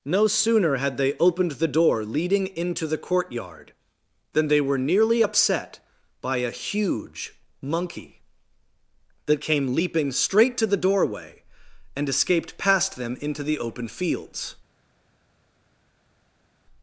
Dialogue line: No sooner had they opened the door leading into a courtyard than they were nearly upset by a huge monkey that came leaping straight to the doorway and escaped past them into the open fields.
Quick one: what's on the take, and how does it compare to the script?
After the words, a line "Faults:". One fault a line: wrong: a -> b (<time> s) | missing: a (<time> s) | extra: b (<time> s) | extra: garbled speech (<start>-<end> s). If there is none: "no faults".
No sooner had they opened the door leading into the courtyard than they were nearly upset by a huge monkey that came leaping straight to the doorway and escaped past them into the open fields.
Faults:
wrong: a -> the (2.9 s)